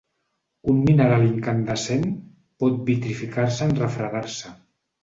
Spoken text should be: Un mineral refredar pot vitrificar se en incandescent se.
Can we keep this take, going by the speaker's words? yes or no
no